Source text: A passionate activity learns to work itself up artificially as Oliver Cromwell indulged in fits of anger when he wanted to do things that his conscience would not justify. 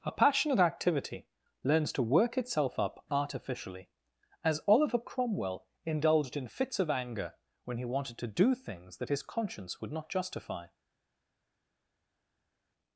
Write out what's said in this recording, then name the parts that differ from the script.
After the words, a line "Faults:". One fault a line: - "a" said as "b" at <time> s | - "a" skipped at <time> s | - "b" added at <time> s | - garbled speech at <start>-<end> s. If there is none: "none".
A passionate activity learns to work itself up artificially as Oliver Cromwell indulged in fits of anger when he wanted to do things that his conscience would not justify.
Faults:
none